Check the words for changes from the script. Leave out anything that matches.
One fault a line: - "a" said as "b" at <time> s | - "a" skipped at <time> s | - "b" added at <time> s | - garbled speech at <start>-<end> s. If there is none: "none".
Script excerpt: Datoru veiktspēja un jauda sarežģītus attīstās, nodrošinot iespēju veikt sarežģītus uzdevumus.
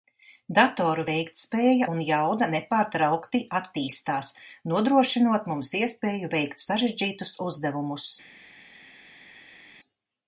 - "sarežģītus" said as "nepārtraukti" at 2.6 s
- "mums" added at 5.5 s